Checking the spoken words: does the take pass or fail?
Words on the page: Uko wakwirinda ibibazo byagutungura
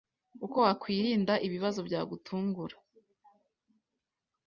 pass